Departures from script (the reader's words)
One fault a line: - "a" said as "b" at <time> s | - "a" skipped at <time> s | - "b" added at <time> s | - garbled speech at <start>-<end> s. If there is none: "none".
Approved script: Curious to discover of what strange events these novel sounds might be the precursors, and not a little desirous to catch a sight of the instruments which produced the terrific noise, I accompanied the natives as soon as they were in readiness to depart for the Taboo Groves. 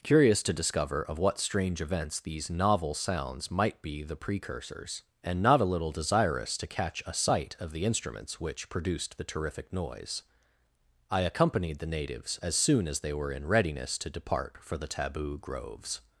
none